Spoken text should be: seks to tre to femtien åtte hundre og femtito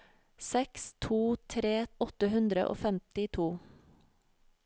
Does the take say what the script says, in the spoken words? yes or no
no